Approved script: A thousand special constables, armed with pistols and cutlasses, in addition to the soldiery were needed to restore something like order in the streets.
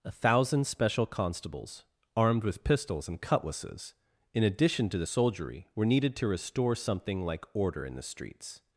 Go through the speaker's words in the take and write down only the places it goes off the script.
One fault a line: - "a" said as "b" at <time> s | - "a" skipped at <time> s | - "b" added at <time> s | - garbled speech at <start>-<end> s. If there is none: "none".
none